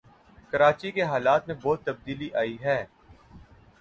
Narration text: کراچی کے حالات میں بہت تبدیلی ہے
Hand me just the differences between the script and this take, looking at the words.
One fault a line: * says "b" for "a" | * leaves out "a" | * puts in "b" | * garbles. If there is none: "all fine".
* puts in "آئی"